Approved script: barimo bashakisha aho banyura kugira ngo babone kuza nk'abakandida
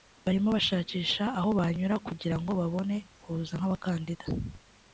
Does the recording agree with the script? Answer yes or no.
yes